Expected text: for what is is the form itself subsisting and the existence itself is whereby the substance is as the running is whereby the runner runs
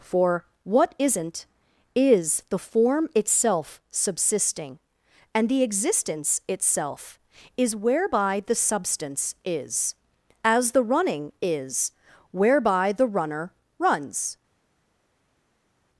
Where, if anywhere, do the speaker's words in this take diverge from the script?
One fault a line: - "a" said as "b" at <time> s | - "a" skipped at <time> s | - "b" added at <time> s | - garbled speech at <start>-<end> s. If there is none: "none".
- "is" said as "isn't" at 1.0 s